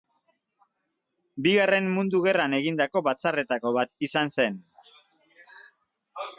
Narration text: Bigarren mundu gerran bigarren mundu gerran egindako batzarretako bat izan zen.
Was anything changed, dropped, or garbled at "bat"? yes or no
no